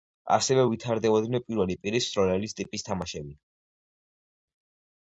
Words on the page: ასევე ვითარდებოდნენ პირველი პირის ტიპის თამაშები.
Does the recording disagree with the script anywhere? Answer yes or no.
yes